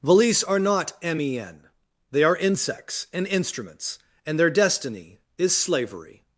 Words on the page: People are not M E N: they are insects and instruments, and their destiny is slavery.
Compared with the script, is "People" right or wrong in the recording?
wrong